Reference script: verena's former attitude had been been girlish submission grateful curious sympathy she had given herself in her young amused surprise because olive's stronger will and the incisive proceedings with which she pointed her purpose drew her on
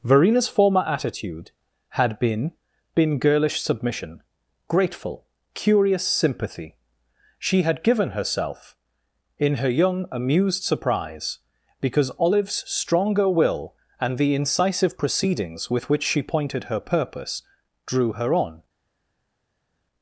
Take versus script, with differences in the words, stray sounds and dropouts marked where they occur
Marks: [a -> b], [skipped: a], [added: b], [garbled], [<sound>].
verena's former attitude had been been girlish submission grateful curious sympathy she had given herself in her young amused surprise because olive's stronger will and the incisive proceedings with which she pointed her purpose drew her on